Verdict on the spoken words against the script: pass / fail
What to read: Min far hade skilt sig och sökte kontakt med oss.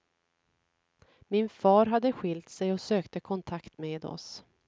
pass